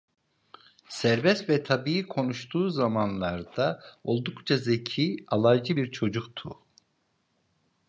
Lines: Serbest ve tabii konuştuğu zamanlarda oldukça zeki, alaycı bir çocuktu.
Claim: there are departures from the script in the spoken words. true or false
false